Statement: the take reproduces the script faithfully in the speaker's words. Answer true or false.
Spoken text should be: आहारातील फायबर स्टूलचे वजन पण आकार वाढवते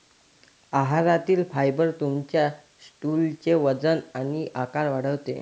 false